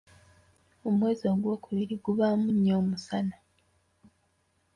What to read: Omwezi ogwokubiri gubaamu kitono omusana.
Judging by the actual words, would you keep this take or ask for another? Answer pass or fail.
fail